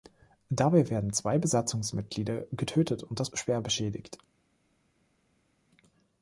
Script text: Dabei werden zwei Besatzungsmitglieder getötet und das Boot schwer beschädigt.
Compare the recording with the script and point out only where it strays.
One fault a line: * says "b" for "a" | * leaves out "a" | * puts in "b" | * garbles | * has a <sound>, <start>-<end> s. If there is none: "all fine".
* leaves out "Boot"